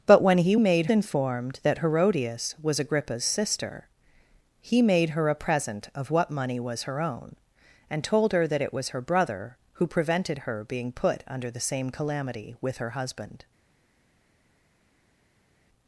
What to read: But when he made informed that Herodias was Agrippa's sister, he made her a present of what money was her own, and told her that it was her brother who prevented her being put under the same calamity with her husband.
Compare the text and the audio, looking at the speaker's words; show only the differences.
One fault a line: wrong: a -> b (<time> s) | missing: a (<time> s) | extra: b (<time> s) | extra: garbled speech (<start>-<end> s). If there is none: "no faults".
no faults